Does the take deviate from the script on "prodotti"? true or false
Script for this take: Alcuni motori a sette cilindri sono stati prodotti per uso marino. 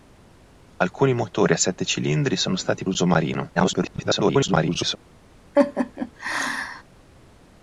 true